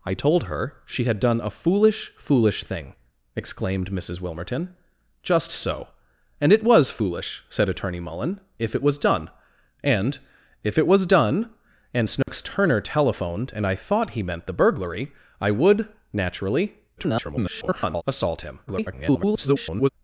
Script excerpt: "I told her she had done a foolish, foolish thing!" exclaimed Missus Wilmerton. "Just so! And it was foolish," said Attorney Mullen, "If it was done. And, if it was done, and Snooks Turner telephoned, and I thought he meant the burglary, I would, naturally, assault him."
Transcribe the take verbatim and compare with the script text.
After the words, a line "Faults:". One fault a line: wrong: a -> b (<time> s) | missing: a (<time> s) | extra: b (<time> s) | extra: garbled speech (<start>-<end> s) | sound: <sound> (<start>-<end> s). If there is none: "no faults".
"I told her she had done a foolish, foolish thing!" exclaimed Missus Wilmerton. "Just so! And it was foolish," said Attorney Mullen, "If it was done. And, if it was done, and Snooks Turner telephoned, and I thought he meant the burglary, I would, naturally, [garbled] assault him." [garbled]
Faults:
sound: dropout (12.2-12.3 s)
extra: garbled speech (17.0-18.0 s)
extra: garbled speech (18.7-19.9 s)